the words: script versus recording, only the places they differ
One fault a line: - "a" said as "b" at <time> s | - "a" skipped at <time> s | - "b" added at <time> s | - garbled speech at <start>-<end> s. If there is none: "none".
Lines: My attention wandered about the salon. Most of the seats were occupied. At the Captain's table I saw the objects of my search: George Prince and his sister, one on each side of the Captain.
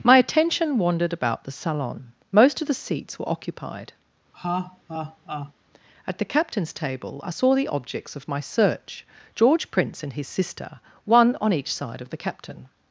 none